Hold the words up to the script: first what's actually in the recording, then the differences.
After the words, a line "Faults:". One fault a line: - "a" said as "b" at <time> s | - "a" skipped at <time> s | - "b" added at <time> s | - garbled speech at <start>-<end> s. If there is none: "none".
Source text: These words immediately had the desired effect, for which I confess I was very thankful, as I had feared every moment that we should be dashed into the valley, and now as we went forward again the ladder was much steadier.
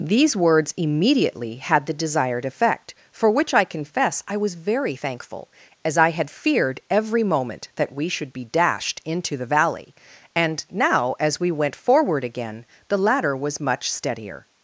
These words immediately had the desired effect, for which I confess I was very thankful, as I had feared every moment that we should be dashed into the valley, and now as we went forward again the ladder was much steadier.
Faults:
none